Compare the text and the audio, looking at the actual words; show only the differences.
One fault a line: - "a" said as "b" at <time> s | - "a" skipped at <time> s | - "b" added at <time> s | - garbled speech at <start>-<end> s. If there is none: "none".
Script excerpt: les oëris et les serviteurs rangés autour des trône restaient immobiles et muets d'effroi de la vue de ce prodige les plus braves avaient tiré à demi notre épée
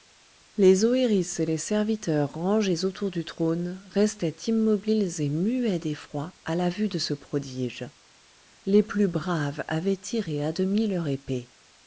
- "des" said as "du" at 3.1 s
- "de" said as "à" at 6.4 s
- "notre" said as "leur" at 10.9 s